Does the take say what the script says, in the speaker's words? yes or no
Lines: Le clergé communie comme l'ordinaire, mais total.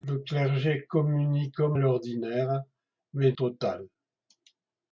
yes